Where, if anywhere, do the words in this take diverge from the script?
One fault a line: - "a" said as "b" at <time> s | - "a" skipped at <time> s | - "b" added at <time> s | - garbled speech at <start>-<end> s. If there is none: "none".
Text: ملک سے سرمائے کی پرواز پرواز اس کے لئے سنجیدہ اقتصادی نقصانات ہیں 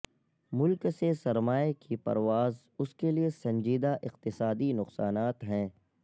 - "پرواز" skipped at 2.6 s